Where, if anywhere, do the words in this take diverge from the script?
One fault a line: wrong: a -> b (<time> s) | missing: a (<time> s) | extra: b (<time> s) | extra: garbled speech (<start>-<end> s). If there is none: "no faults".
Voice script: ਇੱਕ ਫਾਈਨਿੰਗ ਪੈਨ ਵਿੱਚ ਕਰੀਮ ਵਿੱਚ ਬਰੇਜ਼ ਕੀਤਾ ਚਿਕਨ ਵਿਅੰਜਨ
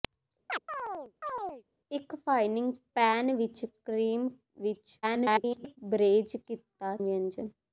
extra: garbled speech (5.0-5.8 s)
missing: ਚਿਕਨ (6.9 s)